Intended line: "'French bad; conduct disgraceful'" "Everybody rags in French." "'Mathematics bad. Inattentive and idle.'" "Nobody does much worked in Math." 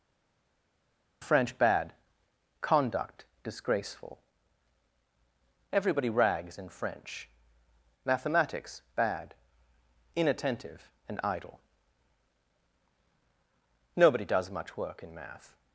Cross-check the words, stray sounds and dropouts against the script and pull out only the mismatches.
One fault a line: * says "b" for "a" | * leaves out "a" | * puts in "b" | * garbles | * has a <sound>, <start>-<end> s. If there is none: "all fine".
* says "work" for "worked"